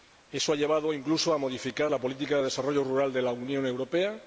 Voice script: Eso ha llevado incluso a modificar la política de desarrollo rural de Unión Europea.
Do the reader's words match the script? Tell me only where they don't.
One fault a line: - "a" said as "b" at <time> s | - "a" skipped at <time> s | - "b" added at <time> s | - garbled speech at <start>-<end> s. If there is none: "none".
- "la" added at 3.2 s